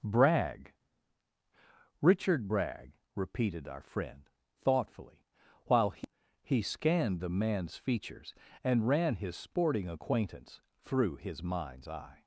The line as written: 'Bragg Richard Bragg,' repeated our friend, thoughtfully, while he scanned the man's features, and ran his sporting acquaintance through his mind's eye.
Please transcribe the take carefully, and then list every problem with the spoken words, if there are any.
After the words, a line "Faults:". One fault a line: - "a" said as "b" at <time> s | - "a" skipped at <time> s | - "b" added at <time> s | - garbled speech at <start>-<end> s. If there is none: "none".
'Bragg Richard Bragg,' repeated our friend, thoughtfully, while he he scanned the man's features, and ran his sporting acquaintance through his mind's eye.
Faults:
- "he" added at 6.4 s